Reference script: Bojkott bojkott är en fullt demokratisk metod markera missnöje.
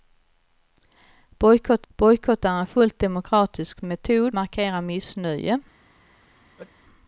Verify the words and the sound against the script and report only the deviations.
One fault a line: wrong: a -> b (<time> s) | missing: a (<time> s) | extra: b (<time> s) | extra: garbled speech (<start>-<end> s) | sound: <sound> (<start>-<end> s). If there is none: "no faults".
sound: sneeze (6.6-6.8 s)